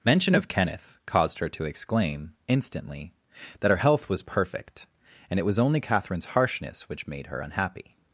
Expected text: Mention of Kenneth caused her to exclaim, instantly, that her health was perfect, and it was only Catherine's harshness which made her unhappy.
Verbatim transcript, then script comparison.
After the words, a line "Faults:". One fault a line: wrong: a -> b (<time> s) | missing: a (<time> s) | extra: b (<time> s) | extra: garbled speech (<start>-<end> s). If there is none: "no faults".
Mention of Kenneth caused her to exclaim, instantly, that her health was perfect, and it was only Catherine's harshness which made her unhappy.
Faults:
no faults